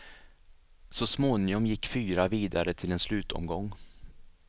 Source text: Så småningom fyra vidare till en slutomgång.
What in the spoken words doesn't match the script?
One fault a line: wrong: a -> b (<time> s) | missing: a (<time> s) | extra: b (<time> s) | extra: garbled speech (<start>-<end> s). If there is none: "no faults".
extra: gick (1.6 s)